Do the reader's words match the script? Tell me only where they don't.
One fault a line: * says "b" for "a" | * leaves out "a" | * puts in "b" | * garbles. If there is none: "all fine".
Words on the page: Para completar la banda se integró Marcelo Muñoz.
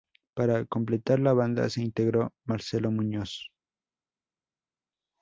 all fine